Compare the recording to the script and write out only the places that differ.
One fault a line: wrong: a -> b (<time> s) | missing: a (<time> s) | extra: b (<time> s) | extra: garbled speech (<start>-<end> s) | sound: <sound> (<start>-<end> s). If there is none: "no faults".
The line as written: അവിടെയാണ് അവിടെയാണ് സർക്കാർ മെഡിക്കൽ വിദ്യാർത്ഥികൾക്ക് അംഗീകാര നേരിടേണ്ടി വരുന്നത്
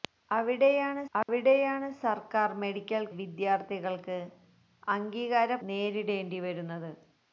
sound: dropout (1.2-1.3 s)